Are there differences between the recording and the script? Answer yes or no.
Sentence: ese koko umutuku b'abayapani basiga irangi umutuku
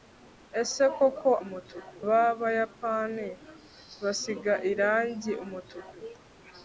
no